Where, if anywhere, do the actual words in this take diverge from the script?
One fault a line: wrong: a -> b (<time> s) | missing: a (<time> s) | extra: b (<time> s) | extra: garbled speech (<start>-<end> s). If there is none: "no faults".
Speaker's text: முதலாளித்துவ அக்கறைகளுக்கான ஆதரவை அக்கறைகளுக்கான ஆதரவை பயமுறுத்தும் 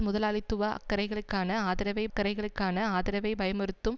no faults